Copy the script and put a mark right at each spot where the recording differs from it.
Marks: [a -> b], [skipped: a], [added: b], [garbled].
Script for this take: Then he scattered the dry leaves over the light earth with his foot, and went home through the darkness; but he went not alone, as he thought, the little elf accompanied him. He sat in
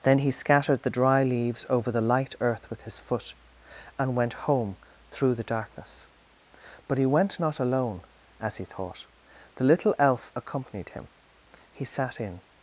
Then he scattered the dry leaves over the light earth with his foot, and went home through the darkness; but he went not alone, as he thought, the little elf accompanied him. He sat in